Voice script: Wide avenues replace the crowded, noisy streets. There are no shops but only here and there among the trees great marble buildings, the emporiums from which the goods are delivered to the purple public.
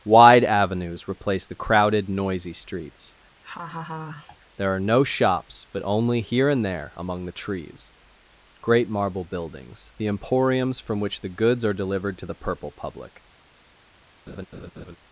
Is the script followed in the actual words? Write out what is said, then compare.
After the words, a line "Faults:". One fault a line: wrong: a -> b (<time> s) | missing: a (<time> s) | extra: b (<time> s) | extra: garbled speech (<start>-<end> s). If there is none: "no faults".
Wide avenues replace the crowded, noisy streets. There are no shops but only here and there among the trees great marble buildings, the emporiums from which the goods are delivered to the purple public.
Faults:
no faults